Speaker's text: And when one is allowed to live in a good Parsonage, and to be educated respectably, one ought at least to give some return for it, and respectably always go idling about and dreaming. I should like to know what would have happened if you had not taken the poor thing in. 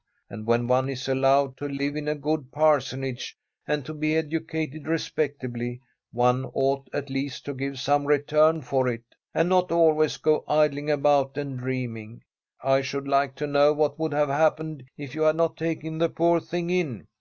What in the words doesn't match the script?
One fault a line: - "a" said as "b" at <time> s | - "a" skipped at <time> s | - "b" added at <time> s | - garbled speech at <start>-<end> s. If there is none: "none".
- "respectably" said as "not" at 9.5 s